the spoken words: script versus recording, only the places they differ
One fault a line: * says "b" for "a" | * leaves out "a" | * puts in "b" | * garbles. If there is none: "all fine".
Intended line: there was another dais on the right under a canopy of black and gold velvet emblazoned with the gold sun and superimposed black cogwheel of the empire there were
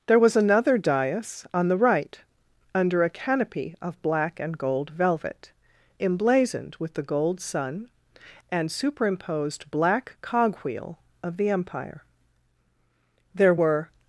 all fine